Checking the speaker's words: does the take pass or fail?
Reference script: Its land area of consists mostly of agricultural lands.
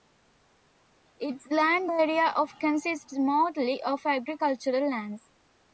pass